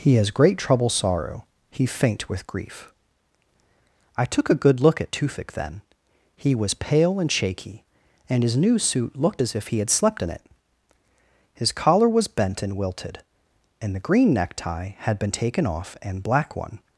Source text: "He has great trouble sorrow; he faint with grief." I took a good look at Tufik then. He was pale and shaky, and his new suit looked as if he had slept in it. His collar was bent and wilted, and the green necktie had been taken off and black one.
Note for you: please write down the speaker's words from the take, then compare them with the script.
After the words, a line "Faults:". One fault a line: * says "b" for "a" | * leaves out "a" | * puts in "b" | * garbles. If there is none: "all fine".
"He has great trouble sorrow; he faint with grief." I took a good look at Tufik then. He was pale and shaky, and his new suit looked as if he had slept in it. His collar was bent and wilted, and the green necktie had been taken off and black one.
Faults:
all fine